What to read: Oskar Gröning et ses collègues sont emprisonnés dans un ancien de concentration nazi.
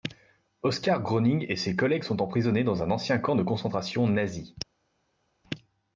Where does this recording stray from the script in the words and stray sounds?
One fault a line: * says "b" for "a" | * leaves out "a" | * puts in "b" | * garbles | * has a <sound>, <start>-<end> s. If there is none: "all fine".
* puts in "camp"